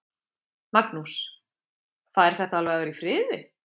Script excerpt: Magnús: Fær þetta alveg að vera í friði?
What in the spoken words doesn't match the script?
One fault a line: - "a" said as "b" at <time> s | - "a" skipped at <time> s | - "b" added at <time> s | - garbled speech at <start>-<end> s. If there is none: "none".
none